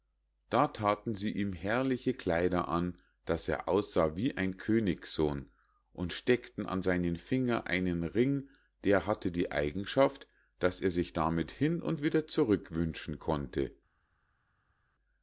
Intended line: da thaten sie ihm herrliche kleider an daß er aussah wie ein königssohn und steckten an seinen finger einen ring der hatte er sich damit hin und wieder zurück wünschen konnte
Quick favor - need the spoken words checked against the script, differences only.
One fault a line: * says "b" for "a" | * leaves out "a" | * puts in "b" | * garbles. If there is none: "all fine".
* puts in "die eigenschaft daß"